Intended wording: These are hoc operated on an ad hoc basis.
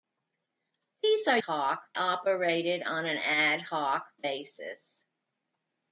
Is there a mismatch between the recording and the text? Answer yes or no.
no